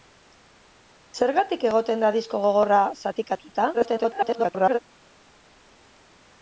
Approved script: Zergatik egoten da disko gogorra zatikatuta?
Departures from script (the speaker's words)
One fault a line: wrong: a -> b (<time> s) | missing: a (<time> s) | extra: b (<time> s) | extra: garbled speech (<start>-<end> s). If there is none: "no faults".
extra: garbled speech (3.7-4.8 s)